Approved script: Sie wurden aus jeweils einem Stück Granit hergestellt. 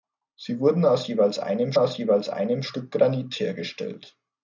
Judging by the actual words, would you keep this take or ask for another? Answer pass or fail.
fail